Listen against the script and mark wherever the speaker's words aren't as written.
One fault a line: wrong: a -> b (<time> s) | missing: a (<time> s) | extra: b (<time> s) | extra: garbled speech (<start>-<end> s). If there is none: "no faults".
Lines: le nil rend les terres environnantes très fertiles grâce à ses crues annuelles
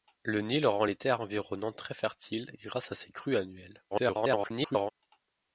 extra: garbled speech (3.9-4.9 s)